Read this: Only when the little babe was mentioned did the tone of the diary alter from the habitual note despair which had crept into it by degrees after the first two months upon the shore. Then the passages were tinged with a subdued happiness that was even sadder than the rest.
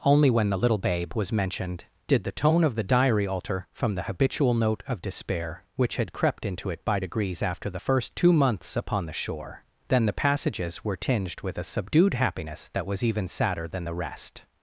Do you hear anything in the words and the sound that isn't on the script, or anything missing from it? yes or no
yes